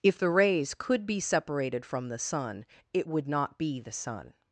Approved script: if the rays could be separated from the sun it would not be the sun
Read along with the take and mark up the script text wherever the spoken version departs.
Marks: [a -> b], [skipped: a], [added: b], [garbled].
if the rays could be separated from the sun it would not be the sun